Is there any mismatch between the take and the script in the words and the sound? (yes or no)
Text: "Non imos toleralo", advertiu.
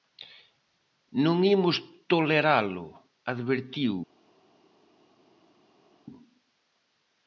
no